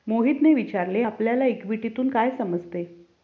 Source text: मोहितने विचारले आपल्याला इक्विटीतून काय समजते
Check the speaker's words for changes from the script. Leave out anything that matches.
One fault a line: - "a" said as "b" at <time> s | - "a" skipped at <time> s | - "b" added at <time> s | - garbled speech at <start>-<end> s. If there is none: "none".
none